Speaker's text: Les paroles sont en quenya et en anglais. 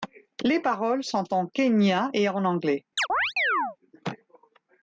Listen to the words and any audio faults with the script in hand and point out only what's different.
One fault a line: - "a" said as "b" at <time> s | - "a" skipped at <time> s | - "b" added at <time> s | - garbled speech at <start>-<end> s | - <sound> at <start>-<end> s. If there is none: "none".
- chirp at 3.0-3.8 s